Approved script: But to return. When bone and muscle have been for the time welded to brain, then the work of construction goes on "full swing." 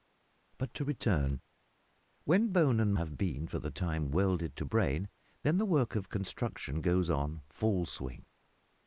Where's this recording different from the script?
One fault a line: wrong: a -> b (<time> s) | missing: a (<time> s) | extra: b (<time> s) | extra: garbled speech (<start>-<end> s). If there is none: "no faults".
missing: muscle (3.0 s)